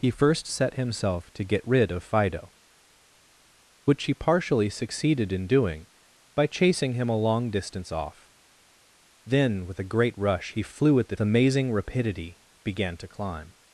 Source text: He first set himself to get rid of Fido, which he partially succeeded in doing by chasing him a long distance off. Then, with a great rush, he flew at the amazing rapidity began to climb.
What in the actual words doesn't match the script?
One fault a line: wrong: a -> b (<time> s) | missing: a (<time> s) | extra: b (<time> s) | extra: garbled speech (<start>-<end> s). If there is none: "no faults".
no faults